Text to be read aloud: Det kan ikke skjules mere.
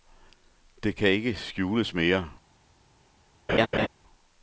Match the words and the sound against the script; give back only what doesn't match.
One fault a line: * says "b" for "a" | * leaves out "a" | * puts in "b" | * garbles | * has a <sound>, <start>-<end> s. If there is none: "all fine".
* has a laugh, 3.5-3.9 s